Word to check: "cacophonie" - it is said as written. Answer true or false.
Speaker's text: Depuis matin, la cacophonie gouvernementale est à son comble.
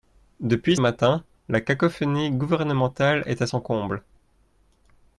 true